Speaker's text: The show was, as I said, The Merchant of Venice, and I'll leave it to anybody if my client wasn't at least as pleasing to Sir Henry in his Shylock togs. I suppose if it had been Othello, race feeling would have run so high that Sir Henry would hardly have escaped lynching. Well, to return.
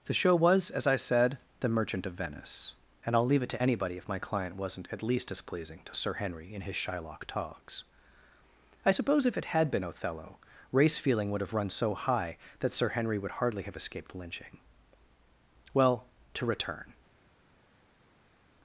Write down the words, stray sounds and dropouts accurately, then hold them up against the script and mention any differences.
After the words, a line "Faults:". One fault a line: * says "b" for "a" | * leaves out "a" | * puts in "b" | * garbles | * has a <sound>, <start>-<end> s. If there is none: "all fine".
The show was, as I said, The Merchant of Venice, and I'll leave it to anybody if my client wasn't at least as pleasing to Sir Henry in his Shylock togs. I suppose if it had been Othello, race feeling would have run so high that Sir Henry would hardly have escaped lynching. Well, to return.
Faults:
all fine